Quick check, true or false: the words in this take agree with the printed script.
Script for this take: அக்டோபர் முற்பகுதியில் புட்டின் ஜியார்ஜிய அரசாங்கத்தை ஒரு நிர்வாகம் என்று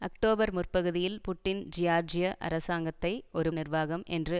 true